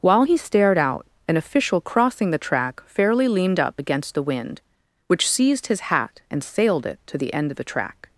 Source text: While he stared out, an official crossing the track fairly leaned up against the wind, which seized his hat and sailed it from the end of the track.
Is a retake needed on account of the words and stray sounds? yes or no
yes